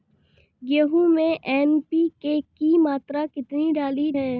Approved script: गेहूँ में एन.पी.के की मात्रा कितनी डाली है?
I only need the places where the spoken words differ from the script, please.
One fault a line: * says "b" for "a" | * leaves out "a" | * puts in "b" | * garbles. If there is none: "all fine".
all fine